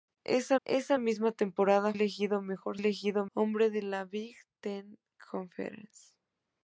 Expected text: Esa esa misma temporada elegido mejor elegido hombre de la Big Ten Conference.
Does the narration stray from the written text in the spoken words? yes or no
no